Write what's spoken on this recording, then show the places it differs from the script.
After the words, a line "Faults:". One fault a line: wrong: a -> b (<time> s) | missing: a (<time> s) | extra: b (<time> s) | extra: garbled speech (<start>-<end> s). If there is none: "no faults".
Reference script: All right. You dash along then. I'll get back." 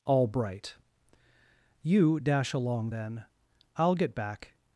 All bright. You dash along then. I'll get back."
Faults:
wrong: right -> bright (0.3 s)